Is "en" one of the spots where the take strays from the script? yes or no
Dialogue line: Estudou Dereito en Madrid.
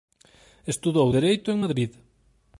no